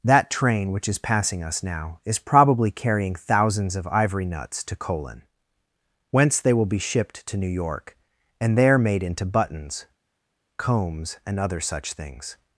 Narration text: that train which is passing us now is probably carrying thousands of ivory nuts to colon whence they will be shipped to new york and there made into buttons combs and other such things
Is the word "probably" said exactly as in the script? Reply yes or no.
yes